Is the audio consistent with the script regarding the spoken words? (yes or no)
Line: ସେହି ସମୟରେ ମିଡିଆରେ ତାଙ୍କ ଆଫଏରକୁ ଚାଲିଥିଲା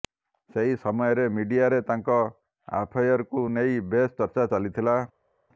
no